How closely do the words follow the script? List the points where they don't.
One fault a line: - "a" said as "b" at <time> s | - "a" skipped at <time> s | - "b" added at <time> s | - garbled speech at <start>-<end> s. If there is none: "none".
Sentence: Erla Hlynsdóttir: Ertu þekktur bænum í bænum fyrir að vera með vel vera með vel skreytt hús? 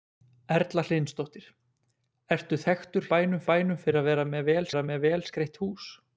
none